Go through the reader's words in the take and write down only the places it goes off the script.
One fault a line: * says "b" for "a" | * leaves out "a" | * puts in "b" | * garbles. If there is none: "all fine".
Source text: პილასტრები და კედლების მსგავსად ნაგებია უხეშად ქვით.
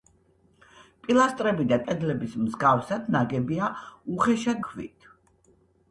all fine